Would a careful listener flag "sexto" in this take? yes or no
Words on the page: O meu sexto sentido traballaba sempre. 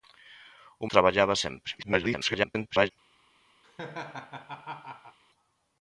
yes